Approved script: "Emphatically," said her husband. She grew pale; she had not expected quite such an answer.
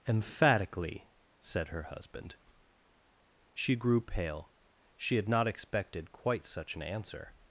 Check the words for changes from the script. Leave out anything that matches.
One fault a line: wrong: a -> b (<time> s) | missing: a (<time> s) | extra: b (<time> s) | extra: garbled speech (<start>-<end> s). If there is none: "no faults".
no faults